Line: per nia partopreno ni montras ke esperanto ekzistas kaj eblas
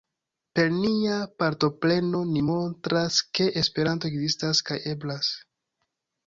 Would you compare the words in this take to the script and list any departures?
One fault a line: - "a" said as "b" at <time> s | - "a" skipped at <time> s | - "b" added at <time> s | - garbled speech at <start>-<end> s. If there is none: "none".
none